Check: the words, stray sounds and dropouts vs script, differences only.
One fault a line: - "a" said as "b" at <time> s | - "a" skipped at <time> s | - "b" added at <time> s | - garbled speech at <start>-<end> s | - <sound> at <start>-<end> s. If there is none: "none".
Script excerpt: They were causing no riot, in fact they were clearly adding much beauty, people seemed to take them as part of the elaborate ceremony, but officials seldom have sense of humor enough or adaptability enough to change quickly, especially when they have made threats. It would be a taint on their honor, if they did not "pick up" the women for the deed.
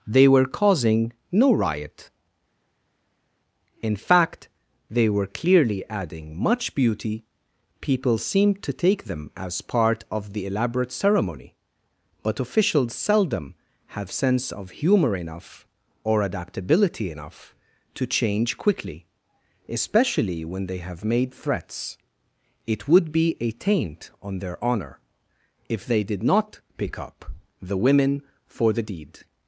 none